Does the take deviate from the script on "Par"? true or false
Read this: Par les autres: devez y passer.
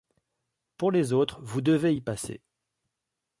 true